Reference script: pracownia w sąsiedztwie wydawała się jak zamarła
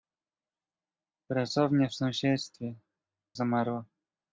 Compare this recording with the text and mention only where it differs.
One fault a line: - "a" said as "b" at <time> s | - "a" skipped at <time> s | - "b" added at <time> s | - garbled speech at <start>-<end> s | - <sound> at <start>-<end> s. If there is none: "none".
- "wydawała się jak" skipped at 2.7 s